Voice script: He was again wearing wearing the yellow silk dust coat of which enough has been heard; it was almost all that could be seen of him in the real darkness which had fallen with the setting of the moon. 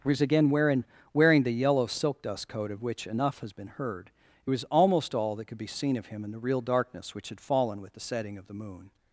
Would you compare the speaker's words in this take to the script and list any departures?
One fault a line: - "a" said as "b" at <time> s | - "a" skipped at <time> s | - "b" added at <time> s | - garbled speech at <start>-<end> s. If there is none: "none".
none